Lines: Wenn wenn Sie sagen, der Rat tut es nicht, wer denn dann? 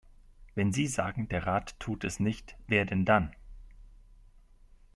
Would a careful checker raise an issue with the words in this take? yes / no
yes